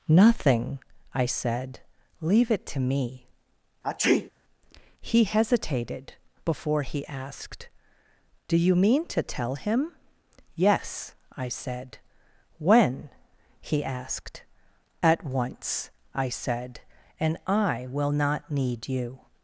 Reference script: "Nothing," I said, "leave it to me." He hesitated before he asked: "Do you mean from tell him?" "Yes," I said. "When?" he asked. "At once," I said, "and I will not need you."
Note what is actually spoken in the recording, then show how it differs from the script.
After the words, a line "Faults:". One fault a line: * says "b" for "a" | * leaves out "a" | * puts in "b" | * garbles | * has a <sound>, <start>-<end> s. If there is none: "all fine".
"Nothing," I said, "leave it to me." He hesitated before he asked: "Do you mean to tell him?" "Yes," I said. "When?" he asked. "At once," I said, "and I will not need you."
Faults:
* has a sneeze, 3.8-4.3 s
* says "to" for "from"